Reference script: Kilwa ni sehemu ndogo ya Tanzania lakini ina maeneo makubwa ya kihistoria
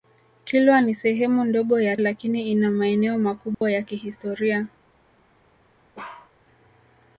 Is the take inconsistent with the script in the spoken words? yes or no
yes